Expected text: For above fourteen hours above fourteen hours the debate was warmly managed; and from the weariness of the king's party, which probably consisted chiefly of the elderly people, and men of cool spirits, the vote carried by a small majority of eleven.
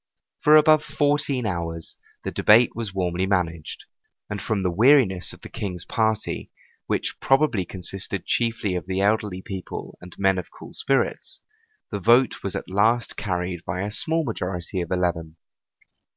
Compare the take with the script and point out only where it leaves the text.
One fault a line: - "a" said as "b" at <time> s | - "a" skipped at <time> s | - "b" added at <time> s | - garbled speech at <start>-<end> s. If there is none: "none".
- "above fourteen hours" skipped at 1.9 s
- "was at last" added at 12.4 s